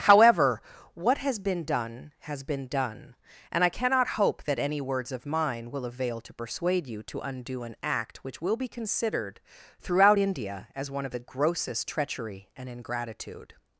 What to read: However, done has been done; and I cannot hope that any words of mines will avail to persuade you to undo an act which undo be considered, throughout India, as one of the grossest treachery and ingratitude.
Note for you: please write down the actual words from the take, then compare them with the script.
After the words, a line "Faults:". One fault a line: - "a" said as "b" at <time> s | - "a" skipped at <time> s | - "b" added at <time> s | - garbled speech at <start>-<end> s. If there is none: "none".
However, what has been done has been done; and I cannot hope that any words of mine will avail to persuade you to undo an act which will be considered, throughout India, as one of the grossest treachery and ingratitude.
Faults:
- "what has been" added at 0.9 s
- "mines" said as "mine" at 5.3 s
- "undo" said as "will" at 8.4 s